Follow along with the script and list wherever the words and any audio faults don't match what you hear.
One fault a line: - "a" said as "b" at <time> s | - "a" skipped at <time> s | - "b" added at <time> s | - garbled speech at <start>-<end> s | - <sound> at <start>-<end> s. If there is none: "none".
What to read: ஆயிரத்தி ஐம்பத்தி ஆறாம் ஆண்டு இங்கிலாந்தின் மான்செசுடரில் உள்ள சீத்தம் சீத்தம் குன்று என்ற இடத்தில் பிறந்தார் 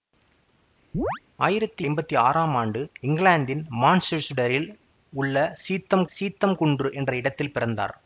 - chirp at 0.9-1.2 s